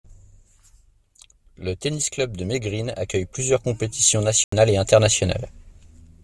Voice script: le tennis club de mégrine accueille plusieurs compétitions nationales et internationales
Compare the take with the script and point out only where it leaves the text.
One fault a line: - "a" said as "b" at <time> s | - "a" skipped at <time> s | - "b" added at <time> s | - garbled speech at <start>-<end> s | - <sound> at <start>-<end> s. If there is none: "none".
- dropout at 4.4-4.5 s